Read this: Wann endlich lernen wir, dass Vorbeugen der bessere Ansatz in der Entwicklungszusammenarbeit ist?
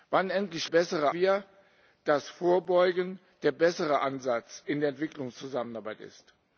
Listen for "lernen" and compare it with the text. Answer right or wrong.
wrong